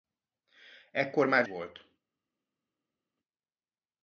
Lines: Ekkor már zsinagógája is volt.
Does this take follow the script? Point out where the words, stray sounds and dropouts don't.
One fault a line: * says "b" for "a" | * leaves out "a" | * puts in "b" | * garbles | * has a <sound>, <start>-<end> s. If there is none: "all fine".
* leaves out "zsinagógája is"